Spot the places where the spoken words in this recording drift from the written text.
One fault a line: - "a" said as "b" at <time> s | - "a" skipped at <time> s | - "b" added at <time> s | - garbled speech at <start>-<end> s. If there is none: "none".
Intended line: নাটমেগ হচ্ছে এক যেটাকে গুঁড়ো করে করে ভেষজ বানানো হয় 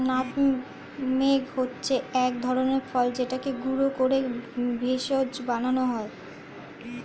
- "ধরনের ফল" added at 2.4 s
- "করে" skipped at 4.2 s